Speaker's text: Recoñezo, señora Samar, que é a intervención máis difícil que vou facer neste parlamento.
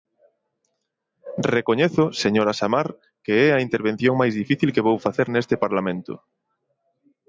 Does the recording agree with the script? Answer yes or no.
yes